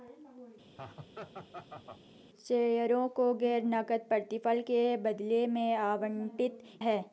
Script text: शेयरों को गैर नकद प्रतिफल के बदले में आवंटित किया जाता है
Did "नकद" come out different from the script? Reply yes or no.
no